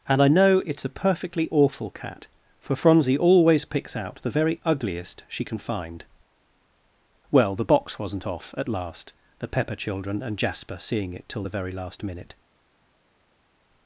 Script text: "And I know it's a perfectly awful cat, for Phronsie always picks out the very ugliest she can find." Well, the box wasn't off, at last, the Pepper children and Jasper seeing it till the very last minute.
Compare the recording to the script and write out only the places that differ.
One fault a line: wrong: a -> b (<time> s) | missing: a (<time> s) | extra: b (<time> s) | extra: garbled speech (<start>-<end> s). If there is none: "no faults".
no faults